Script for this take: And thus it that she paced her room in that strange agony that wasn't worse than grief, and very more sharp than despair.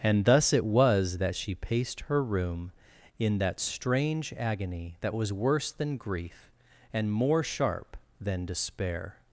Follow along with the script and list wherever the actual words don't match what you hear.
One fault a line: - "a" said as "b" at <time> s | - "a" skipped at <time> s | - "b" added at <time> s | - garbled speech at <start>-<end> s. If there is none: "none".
- "was" added at 0.7 s
- "wasn't" said as "was" at 5.1 s
- "very" skipped at 7.1 s